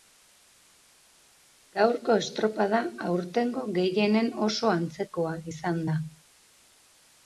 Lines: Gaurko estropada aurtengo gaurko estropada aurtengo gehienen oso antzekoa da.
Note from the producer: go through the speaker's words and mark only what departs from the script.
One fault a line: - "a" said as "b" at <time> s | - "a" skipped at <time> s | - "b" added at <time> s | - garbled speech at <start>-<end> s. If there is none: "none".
- "gaurko estropada aurtengo" skipped at 3.7 s
- "izan" added at 5.5 s